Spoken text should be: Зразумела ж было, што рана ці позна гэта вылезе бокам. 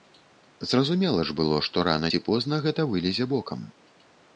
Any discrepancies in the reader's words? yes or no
no